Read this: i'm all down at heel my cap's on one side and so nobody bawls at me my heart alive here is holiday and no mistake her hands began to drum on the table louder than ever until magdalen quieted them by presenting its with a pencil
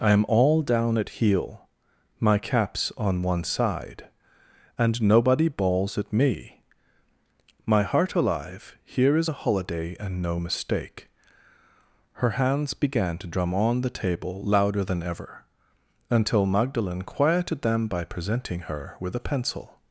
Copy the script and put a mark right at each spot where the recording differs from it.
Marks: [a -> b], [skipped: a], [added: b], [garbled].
i'm all down at heel my cap's on one side and [skipped: so] nobody bawls at me my heart alive here is [added: a] holiday and no mistake her hands began to drum on the table louder than ever until magdalen quieted them by presenting [its -> her] with a pencil